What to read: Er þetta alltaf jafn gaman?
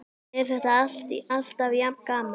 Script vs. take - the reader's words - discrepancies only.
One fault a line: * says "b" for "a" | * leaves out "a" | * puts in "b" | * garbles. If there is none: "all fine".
all fine